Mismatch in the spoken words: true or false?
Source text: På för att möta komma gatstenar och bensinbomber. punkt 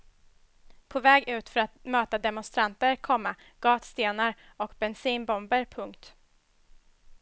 true